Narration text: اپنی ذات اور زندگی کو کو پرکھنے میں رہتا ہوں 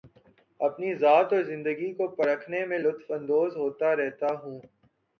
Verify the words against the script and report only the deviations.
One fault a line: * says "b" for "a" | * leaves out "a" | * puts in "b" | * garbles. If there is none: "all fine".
* leaves out "کو"
* puts in "لطف اندوز ہوتا"